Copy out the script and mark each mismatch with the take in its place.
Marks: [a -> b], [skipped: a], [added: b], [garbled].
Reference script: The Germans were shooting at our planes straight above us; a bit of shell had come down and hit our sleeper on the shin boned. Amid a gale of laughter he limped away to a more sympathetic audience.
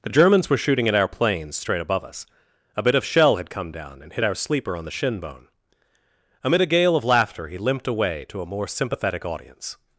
The Germans were shooting at our planes straight above us; a bit of shell had come down and hit our sleeper on the shin [boned. -> bone] Amid a gale of laughter he limped away to a more sympathetic audience.